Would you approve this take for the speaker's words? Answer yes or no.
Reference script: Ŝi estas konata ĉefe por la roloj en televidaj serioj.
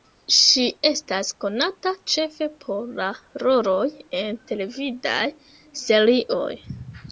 yes